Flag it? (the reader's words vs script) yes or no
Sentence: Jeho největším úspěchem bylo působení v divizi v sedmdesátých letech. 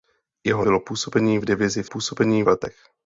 yes